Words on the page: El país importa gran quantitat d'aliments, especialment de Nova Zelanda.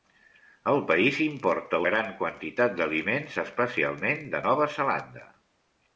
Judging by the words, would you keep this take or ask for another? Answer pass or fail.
pass